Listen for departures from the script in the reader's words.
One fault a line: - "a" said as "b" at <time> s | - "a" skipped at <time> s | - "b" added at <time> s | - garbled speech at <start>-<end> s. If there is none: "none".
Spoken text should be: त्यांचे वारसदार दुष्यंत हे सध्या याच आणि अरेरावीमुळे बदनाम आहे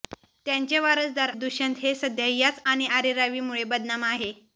none